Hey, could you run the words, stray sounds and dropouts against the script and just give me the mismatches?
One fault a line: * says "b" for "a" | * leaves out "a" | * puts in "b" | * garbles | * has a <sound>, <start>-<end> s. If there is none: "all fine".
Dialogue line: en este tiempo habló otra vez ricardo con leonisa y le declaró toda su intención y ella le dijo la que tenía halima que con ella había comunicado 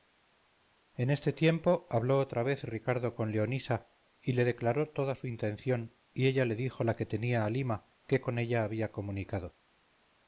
all fine